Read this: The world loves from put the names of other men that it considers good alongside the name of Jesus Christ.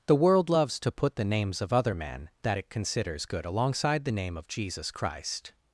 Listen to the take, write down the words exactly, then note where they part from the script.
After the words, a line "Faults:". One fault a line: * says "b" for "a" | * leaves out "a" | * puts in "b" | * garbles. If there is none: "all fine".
The world loves to put the names of other men that it considers good alongside the name of Jesus Christ.
Faults:
* says "to" for "from"